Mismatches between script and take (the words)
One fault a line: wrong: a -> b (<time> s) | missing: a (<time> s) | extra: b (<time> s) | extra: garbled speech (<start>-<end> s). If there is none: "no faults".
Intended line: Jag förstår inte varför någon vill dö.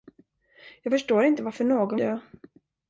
missing: vill (2.0 s)